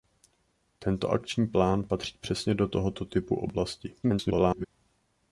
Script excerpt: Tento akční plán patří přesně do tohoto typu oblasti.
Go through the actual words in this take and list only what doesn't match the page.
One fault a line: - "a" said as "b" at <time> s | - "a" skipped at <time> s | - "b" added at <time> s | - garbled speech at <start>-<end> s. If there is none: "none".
- garbled speech at 4.0-4.7 s